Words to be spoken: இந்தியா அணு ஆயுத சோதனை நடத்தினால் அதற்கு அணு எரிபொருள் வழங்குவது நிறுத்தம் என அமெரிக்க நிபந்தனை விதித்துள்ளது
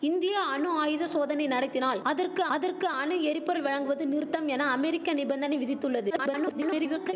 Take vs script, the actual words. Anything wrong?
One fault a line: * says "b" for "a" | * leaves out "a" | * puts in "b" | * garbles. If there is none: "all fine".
* puts in "அதற்கு"
* garbles